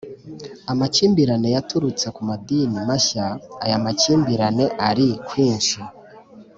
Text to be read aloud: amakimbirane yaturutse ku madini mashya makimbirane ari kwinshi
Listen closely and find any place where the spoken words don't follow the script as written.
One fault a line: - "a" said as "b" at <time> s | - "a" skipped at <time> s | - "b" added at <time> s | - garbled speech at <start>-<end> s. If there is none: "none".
- "aya" added at 3.6 s